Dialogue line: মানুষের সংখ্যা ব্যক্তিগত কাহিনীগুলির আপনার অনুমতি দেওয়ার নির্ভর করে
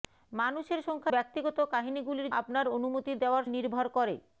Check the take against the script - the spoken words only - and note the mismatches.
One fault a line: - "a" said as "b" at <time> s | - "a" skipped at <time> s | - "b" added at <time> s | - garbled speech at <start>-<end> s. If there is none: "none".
none